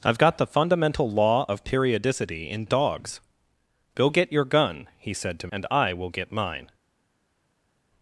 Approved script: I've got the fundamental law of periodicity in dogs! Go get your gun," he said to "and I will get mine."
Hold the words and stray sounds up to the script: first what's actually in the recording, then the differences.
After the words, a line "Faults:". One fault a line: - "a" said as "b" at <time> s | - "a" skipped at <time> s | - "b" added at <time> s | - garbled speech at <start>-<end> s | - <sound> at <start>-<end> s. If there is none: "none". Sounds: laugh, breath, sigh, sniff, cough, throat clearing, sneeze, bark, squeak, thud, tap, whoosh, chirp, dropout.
I've got the fundamental law of periodicity in dogs! Go get your gun," he said to "and I will get mine."
Faults:
none